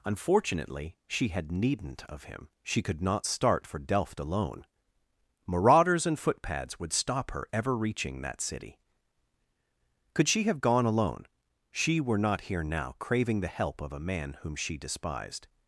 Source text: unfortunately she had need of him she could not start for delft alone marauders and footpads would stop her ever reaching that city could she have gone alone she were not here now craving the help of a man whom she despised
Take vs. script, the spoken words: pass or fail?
fail